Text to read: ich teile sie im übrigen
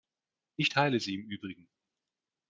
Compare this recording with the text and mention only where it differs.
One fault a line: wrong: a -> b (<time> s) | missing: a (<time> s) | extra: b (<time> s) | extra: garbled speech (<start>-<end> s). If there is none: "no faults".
no faults